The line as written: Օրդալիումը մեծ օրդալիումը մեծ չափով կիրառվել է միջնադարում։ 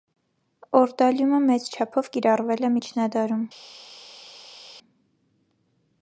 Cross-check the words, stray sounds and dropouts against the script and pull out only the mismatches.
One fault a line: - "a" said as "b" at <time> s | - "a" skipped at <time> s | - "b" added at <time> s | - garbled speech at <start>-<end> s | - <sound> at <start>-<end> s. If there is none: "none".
- "օրդալիումը մեծ" skipped at 1.7 s